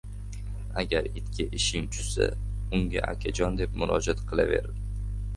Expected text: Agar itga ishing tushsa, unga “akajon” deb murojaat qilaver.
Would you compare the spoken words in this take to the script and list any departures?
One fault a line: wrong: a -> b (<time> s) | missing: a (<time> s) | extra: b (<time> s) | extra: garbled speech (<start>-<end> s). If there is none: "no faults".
no faults